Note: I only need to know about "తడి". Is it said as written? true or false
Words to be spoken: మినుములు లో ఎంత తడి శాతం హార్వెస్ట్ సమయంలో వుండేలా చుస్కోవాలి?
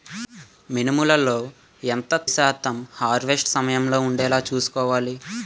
false